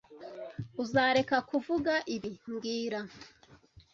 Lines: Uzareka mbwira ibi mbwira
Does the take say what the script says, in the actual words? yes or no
no